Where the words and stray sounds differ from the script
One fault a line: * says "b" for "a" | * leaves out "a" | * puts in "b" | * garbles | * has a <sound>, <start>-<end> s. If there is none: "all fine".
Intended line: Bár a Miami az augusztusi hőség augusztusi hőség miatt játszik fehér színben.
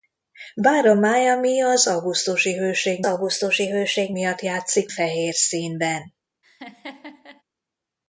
* has a laugh, 6.4-7.4 s